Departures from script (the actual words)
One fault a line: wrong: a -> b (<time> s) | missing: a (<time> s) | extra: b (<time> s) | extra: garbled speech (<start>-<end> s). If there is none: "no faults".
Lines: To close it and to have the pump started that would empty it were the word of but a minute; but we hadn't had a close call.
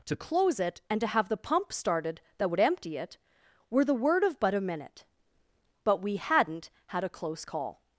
no faults